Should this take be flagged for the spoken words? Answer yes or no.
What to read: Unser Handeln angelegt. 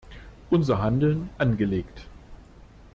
no